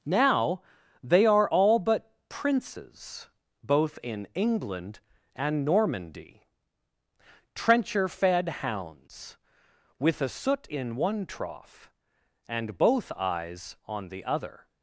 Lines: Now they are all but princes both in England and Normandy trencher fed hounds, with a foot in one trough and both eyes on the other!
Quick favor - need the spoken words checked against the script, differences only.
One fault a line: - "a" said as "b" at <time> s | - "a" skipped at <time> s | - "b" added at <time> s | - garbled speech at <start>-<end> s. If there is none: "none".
- "foot" said as "soot" at 10.3 s